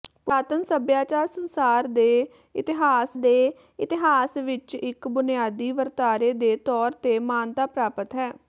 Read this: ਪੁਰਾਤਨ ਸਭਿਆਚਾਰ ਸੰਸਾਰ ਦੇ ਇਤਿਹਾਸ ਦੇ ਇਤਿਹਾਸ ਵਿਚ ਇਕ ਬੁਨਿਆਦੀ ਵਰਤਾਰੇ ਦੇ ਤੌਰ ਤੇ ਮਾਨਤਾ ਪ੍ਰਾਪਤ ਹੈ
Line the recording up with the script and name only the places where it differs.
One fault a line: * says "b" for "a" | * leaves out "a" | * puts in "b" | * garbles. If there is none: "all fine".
all fine